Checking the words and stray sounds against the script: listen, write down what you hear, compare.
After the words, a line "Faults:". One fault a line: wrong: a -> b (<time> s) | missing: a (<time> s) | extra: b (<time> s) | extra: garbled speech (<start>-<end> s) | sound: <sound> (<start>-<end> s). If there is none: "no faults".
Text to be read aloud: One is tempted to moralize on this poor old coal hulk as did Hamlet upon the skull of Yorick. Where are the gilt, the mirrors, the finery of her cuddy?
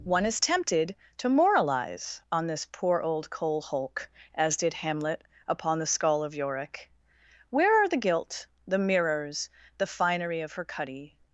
One is tempted to moralize on this poor old coal hulk as did Hamlet upon the skull of Yorick. Where are the gilt, the mirrors, the finery of her cuddy?
Faults:
no faults